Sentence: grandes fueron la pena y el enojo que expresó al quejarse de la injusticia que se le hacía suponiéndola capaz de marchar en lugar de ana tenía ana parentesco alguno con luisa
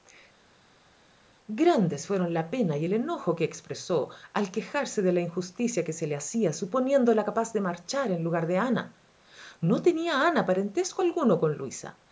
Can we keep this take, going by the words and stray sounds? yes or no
no